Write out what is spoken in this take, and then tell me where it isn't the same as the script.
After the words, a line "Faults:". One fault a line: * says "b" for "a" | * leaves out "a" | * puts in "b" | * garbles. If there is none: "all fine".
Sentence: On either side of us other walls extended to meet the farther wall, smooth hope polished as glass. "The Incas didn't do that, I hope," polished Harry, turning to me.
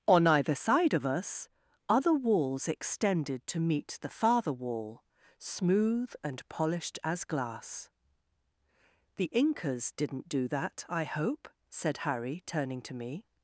On either side of us other walls extended to meet the farther wall, smooth and polished as glass. "The Incas didn't do that, I hope," said Harry, turning to me.
Faults:
* says "and" for "hope"
* says "said" for "polished"